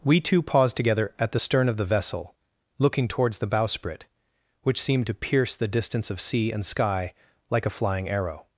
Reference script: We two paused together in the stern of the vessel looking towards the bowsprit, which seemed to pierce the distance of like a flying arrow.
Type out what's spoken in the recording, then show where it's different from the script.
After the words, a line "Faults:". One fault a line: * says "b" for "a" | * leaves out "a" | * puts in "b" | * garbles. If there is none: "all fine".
We two paused together at the stern of the vessel looking towards the bowsprit, which seemed to pierce the distance of sea and sky like a flying arrow.
Faults:
* says "at" for "in"
* puts in "sea and sky"